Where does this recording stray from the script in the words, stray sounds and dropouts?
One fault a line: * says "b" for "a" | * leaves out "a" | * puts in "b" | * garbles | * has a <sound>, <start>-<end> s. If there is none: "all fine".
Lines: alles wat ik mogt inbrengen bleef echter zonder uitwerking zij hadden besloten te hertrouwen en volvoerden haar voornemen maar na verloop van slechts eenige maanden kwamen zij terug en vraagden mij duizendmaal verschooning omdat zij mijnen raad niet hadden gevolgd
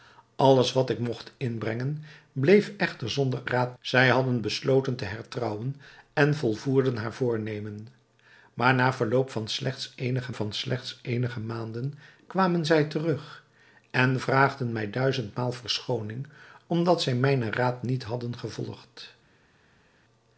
* says "raad" for "uitwerking"
* puts in "van slechts eenige"